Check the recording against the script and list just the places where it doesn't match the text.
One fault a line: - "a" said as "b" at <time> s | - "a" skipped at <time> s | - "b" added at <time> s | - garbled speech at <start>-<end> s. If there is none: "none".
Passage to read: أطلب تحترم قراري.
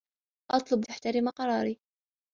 none